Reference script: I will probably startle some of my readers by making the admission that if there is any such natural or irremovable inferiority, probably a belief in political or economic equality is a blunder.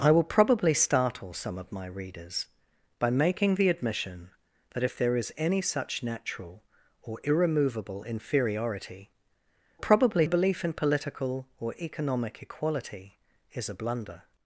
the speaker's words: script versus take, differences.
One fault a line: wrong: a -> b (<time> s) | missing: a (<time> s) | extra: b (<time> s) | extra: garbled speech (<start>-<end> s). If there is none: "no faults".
no faults